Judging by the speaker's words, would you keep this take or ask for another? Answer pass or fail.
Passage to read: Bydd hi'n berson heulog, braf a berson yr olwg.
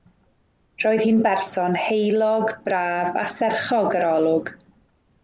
fail